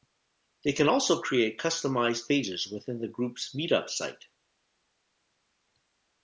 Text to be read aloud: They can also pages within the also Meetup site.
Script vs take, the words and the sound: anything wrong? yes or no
yes